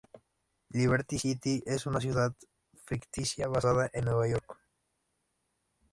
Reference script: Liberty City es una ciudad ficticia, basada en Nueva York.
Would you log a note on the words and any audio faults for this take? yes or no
no